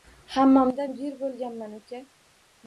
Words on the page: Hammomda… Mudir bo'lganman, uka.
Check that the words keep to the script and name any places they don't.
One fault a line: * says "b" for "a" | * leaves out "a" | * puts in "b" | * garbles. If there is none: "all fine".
all fine